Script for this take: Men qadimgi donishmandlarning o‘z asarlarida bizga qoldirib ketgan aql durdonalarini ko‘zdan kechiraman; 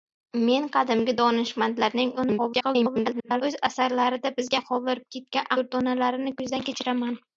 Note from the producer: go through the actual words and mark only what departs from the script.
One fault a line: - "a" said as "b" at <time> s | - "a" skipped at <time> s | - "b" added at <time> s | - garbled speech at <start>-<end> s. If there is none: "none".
- garbled speech at 2.2-3.4 s
- "aql" skipped at 5.5 s